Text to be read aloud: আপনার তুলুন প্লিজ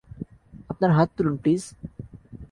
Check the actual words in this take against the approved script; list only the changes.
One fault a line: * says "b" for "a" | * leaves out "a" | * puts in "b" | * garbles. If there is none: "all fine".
* puts in "হাত"